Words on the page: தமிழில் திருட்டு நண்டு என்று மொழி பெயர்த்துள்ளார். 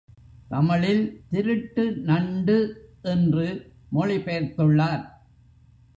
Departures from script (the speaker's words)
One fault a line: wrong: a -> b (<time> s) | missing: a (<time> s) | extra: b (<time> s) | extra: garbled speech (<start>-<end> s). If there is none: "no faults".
no faults